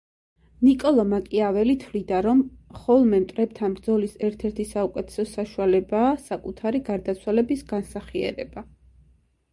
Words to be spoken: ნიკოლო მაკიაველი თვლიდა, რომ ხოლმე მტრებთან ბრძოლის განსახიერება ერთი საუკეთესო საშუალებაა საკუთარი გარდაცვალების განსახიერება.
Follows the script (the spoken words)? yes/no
no